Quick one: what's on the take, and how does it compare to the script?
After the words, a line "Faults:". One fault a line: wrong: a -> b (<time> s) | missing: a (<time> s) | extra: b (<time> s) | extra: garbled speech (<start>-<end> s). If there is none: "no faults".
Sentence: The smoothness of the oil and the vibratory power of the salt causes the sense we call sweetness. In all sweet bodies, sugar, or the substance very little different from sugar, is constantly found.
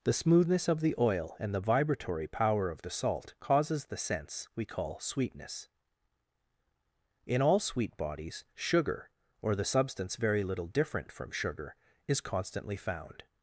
The smoothness of the oil and the vibratory power of the salt causes the sense we call sweetness. In all sweet bodies, sugar, or the substance very little different from sugar, is constantly found.
Faults:
no faults